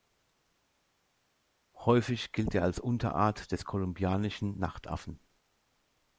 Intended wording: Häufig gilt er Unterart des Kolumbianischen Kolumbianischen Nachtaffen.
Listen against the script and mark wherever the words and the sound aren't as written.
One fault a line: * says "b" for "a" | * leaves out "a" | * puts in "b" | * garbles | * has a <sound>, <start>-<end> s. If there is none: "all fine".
* puts in "als"
* leaves out "Kolumbianischen"